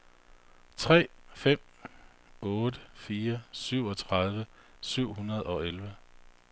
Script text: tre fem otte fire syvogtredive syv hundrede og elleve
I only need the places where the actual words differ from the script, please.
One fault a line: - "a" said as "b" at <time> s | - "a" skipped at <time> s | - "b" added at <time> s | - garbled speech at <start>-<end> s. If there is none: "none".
none